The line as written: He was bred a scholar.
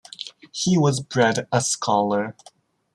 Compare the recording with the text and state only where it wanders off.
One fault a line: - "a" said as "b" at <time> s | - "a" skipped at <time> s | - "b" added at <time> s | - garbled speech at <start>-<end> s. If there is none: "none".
none